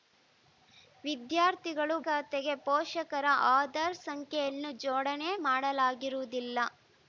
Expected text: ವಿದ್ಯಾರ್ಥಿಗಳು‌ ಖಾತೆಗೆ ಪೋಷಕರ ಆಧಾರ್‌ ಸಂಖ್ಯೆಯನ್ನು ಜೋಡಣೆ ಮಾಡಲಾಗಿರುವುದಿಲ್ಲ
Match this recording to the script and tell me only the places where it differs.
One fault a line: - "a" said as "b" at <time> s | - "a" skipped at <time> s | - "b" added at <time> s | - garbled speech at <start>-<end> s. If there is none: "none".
none